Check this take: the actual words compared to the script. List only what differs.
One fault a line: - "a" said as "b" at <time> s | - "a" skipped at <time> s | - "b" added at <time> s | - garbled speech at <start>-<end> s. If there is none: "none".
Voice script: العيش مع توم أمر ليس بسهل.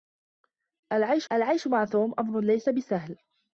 - "العيش" added at 1.3 s